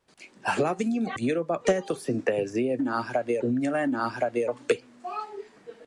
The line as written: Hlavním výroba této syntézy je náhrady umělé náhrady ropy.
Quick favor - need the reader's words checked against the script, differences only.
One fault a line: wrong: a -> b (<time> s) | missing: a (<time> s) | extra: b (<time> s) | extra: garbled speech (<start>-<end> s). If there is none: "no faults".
no faults